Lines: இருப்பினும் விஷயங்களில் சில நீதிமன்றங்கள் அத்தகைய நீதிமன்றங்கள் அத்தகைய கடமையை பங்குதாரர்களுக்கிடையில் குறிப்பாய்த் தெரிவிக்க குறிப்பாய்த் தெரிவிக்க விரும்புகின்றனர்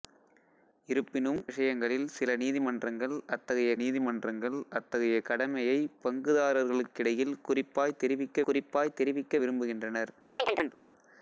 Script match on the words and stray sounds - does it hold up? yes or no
no